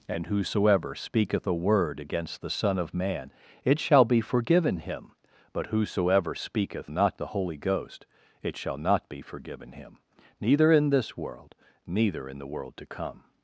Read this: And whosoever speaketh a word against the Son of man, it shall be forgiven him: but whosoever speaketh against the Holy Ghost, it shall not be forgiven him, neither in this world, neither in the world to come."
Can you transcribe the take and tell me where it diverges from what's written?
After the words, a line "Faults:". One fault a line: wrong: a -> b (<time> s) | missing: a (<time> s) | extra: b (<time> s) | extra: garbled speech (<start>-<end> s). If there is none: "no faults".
And whosoever speaketh a word against the Son of man, it shall be forgiven him: but whosoever speaketh not the Holy Ghost, it shall not be forgiven him, neither in this world, neither in the world to come."
Faults:
wrong: against -> not (6.9 s)